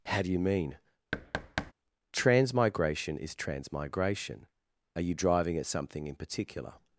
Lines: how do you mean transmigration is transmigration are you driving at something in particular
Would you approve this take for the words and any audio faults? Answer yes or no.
no